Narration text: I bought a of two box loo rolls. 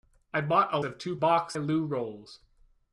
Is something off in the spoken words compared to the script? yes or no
no